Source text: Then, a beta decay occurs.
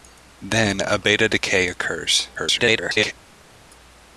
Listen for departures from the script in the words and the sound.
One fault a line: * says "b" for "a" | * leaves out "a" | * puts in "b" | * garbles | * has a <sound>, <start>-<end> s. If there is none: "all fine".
* garbles